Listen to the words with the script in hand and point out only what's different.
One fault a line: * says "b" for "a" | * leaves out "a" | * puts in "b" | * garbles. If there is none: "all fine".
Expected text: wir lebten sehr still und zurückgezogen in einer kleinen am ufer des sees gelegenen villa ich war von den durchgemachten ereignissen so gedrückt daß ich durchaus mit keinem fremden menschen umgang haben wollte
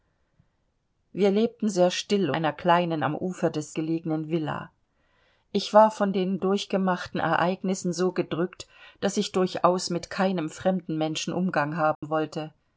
* leaves out "und zurückgezogen in"
* leaves out "sees"